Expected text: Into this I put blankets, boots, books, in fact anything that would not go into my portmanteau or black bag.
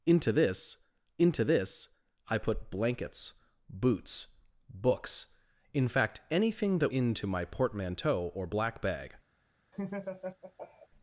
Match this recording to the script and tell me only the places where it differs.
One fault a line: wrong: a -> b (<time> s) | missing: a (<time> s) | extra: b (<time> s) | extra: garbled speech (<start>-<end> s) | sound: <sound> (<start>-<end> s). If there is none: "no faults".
extra: into this (1.2 s)
missing: would not go (6.9 s)
sound: laugh (9.7-10.9 s)